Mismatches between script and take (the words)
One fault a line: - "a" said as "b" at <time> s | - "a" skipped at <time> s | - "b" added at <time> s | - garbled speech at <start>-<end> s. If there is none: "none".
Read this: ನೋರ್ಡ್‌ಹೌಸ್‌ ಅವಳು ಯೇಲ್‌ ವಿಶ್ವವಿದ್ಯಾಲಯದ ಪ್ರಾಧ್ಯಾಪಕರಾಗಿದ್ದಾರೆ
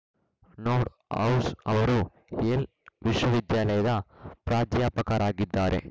- "ಅವಳು" said as "ಅವರು" at 1.7 s